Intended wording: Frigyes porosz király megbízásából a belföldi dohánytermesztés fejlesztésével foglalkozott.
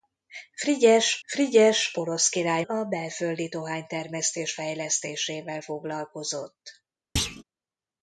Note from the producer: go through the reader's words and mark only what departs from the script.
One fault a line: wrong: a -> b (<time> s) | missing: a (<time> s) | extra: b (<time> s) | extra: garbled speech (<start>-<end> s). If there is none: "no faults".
extra: frigyes (1.2 s)
missing: megbízásából (2.7 s)